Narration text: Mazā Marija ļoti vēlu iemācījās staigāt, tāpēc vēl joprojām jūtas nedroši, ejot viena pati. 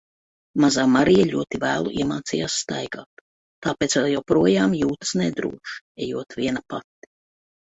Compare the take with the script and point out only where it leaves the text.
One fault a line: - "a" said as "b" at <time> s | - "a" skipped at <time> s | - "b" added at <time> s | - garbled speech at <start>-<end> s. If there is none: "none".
none